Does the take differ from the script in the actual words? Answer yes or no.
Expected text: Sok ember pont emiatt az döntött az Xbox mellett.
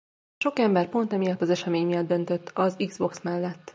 yes